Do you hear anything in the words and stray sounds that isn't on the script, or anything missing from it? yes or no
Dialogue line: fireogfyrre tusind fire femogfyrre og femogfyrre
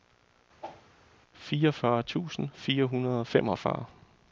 yes